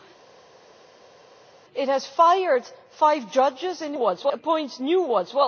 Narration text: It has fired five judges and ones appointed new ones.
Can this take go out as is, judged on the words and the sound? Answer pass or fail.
pass